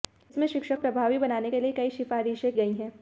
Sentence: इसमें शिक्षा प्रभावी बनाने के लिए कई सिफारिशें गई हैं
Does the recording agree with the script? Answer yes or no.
yes